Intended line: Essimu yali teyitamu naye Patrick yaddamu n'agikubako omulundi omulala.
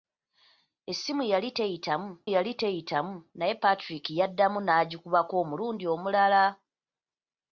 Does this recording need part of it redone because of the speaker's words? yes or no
yes